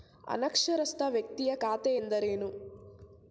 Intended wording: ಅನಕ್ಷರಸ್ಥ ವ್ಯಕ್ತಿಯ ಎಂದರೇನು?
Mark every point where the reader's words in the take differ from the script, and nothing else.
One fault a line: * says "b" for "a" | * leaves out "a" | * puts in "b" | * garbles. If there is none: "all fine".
* puts in "ಖಾತೆ"